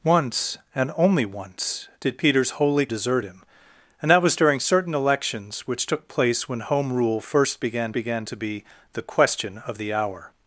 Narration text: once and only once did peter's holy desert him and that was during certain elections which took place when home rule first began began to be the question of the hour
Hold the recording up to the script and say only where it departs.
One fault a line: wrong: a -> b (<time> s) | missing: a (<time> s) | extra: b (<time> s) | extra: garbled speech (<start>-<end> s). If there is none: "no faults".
no faults